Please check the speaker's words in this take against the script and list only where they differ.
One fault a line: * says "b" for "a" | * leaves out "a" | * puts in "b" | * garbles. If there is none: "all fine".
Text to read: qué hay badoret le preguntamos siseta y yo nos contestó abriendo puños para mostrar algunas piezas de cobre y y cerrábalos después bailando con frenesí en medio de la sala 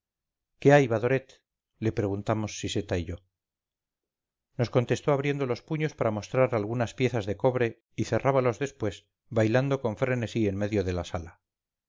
* puts in "los"
* leaves out "y"